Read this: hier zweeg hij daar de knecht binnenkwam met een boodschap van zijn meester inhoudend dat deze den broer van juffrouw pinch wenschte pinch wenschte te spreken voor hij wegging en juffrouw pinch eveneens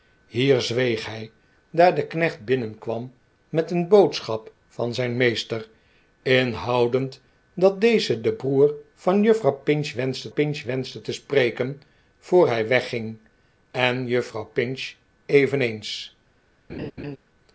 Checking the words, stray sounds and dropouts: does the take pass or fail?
fail